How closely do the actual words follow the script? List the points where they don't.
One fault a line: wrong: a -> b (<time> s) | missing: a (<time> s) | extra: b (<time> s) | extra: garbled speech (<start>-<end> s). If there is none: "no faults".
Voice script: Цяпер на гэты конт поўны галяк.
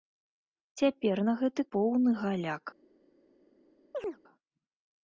missing: конт (1.6 s)